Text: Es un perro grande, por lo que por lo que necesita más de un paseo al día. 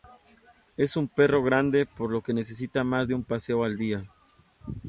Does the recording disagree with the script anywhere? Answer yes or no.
yes